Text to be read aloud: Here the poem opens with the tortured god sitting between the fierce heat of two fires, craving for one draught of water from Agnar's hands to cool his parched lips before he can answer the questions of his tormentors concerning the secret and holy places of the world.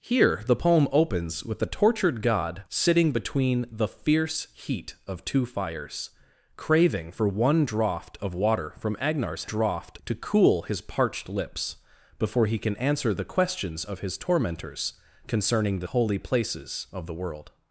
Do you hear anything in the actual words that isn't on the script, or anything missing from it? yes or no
yes